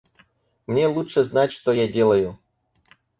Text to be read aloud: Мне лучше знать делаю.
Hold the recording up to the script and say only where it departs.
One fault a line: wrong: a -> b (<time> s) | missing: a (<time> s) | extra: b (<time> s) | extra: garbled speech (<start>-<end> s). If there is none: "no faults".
extra: что я (1.5 s)